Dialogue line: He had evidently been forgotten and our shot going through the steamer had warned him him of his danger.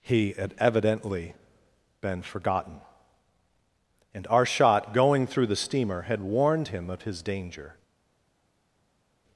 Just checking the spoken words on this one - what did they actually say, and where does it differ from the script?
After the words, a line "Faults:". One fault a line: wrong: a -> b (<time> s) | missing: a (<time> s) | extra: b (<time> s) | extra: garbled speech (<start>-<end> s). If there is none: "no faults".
He had evidently been forgotten and our shot going through the steamer had warned him of his danger.
Faults:
missing: him (6.9 s)